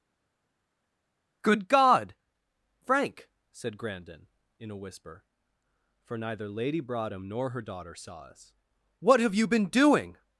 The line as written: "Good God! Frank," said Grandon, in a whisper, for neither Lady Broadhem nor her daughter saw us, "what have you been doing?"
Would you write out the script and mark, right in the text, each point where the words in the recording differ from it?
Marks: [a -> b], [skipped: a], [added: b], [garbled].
"Good God! Frank," said Grandon, in a whisper, for neither Lady Broadhem nor her daughter saw us, "what have you been doing?"